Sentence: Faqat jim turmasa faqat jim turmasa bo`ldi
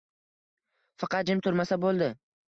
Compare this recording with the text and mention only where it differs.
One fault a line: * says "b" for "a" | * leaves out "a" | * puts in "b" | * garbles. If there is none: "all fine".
* leaves out "faqat jim turmasa"